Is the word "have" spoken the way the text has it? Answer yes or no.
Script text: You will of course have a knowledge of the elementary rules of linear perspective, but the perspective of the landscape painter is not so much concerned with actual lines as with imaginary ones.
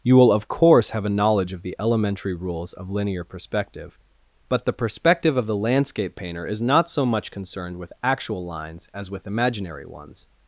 yes